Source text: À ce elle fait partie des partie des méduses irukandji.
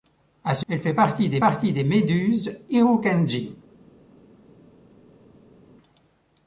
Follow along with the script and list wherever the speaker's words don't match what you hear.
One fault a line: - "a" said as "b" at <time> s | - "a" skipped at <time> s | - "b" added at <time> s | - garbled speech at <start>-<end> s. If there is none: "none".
none